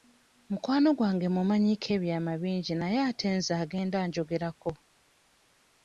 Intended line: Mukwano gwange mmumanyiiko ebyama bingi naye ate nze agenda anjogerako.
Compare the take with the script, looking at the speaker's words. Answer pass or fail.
pass